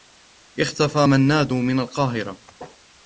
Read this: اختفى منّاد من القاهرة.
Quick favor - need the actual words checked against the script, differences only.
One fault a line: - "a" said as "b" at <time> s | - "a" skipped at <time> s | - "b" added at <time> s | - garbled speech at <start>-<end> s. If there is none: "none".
none